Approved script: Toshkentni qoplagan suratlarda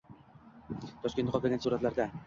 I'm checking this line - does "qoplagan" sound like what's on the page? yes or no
yes